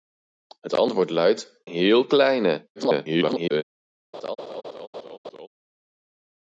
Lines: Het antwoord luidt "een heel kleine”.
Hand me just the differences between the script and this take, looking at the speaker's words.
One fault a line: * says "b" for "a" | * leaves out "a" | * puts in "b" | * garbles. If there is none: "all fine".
* leaves out "een"
* garbles